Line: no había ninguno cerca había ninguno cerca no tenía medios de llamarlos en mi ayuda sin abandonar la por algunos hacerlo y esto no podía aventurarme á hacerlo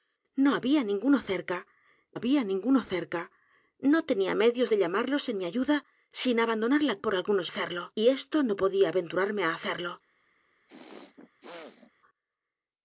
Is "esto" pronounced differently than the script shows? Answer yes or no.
no